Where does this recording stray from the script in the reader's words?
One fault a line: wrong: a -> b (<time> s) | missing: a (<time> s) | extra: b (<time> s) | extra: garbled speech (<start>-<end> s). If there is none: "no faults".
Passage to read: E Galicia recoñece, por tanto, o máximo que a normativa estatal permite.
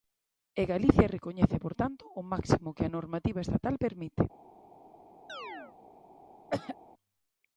no faults